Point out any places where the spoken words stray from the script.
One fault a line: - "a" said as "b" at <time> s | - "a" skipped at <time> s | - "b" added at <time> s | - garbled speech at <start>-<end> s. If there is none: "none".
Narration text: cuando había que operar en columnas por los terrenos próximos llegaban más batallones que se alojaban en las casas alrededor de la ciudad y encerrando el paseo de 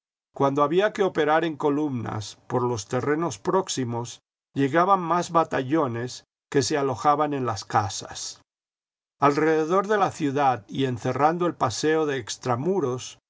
none